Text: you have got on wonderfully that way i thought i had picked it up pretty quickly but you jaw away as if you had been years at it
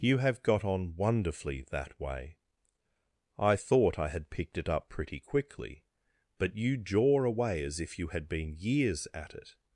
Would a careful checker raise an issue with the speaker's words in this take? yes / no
no